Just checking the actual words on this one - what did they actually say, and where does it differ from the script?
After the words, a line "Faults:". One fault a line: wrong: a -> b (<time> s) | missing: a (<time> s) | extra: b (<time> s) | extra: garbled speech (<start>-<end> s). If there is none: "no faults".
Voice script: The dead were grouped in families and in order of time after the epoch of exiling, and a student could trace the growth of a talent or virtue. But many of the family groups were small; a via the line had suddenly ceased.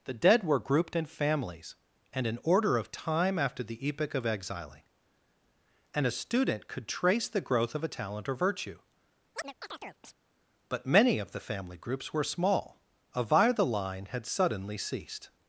The dead were grouped in families and in order of time after the epoch of exiling, and a student could trace the growth of a talent or virtue. But many of the family groups were small; a via the line had suddenly ceased.
Faults:
no faults